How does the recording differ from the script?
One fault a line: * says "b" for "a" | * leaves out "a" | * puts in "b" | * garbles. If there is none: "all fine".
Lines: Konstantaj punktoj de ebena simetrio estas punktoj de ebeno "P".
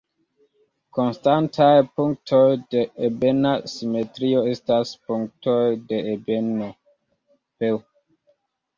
all fine